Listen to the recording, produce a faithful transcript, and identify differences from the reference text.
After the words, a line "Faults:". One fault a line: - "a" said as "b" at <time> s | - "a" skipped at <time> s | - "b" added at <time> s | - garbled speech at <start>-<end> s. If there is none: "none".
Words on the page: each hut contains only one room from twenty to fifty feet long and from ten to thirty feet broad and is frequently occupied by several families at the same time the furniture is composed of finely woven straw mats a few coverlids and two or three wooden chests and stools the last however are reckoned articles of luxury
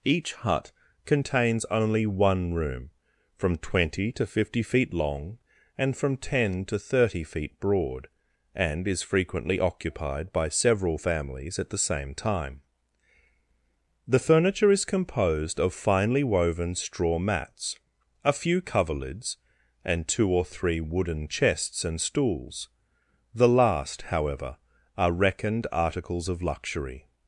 each hut contains only one room from twenty to fifty feet long and from ten to thirty feet broad and is frequently occupied by several families at the same time the furniture is composed of finely woven straw mats a few coverlids and two or three wooden chests and stools the last however are reckoned articles of luxury
Faults:
none